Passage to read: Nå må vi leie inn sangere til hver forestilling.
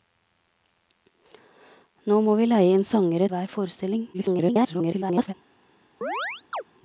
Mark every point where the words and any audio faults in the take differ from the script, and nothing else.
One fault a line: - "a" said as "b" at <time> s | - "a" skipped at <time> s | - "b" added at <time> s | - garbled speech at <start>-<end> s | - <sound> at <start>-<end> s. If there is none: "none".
- "til" skipped at 3.3 s
- garbled speech at 4.1-5.3 s
- chirp at 6.0-6.6 s